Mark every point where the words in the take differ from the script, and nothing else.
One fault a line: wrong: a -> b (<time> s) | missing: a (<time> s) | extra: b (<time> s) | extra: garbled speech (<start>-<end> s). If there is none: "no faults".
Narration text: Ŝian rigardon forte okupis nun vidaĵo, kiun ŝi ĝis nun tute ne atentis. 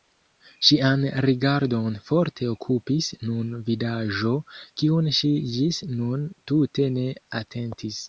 no faults